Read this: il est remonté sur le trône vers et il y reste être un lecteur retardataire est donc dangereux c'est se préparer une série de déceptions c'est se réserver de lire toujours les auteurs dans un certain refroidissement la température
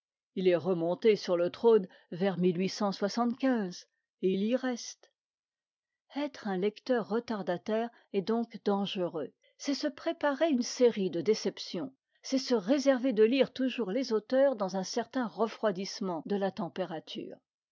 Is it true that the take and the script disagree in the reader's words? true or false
true